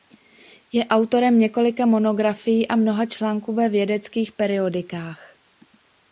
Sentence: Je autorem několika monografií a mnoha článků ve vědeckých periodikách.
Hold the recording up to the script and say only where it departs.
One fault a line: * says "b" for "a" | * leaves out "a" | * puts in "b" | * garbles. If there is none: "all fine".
all fine